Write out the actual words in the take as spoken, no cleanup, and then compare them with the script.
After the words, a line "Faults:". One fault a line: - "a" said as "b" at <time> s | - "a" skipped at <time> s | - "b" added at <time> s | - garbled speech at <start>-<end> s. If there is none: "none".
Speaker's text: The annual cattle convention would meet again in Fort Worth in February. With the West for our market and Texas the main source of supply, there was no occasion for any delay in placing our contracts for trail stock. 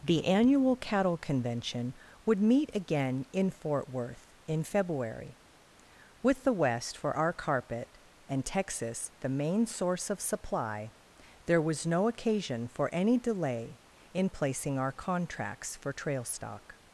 The annual cattle convention would meet again in Fort Worth in February. With the West for our carpet and Texas the main source of supply, there was no occasion for any delay in placing our contracts for trail stock.
Faults:
- "market" said as "carpet" at 7.3 s